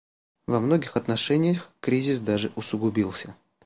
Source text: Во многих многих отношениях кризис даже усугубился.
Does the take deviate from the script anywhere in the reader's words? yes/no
yes